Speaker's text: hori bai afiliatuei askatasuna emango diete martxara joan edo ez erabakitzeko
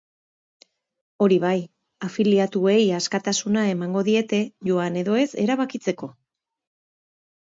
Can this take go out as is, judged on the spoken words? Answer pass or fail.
fail